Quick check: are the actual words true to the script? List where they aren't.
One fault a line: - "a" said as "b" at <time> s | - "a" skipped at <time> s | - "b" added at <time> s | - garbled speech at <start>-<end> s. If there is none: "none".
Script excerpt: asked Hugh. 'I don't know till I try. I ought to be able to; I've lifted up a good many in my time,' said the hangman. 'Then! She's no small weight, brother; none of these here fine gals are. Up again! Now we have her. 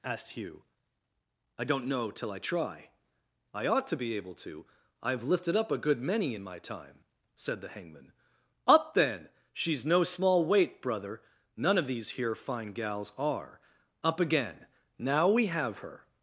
- "Up" added at 8.7 s